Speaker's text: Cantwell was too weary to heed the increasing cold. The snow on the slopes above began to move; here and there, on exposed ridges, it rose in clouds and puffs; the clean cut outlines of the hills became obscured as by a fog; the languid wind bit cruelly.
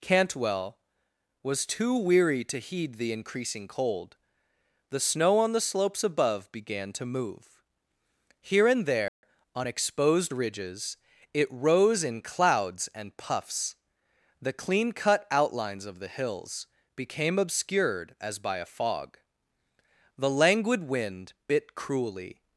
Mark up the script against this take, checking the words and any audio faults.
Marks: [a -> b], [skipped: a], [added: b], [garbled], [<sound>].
Cantwell was too weary to heed the increasing cold. The snow on the slopes above began to move; here and there, [dropout] on exposed ridges, it rose in clouds and puffs; the clean cut outlines of the hills became obscured as by a fog; the languid wind bit cruelly.